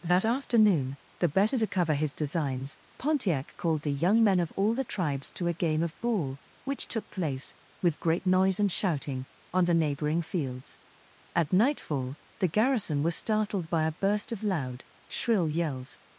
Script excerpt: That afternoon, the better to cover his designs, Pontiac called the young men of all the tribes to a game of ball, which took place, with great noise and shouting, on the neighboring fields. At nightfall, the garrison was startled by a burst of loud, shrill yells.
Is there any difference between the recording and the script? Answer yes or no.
no